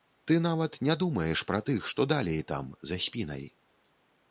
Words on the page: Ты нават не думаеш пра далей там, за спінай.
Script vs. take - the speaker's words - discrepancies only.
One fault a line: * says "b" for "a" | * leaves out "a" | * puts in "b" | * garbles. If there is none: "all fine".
* puts in "тых што"